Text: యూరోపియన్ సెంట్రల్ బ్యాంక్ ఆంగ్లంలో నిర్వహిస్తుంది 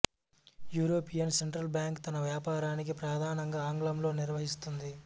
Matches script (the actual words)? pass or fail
fail